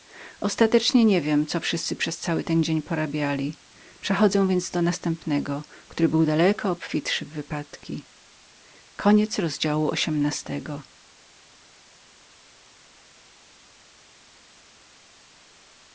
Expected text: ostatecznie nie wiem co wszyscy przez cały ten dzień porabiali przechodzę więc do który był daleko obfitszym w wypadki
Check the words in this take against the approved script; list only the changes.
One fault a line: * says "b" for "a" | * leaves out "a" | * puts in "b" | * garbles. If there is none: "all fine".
* puts in "następnego"